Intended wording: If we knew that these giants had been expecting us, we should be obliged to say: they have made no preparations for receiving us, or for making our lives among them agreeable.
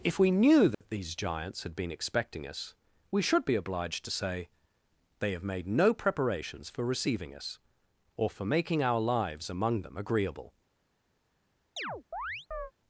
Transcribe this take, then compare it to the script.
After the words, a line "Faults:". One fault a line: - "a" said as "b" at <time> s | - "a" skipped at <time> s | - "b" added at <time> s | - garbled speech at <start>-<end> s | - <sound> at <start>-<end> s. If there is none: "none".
If we knew that these giants had been expecting us, we should be obliged to say: they have made no preparations for receiving us, or for making our lives among them agreeable.
Faults:
- dropout at 0.7-0.8 s
- chirp at 11.8-12.7 s